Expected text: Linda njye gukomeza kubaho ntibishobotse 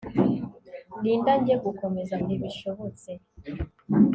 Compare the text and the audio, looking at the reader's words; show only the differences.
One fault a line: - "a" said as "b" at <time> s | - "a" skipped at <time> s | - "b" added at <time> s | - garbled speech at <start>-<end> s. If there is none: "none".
- "kubaho" skipped at 2.1 s